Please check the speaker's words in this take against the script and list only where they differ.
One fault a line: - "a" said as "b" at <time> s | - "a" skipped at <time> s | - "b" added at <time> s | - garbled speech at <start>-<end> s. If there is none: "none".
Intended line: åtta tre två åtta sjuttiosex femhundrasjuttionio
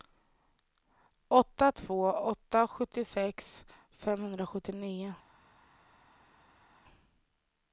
- "tre" skipped at 1.7 s